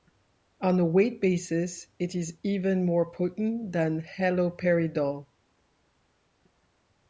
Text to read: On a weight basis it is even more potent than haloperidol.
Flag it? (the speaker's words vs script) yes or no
no